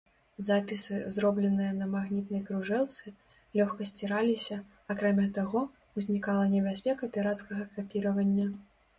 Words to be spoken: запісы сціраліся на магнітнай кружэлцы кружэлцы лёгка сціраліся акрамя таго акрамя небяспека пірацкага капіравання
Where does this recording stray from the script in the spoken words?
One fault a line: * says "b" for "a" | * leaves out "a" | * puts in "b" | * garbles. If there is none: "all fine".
* says "зробленыя" for "сціраліся"
* leaves out "кружэлцы"
* says "узнікала" for "акрамя"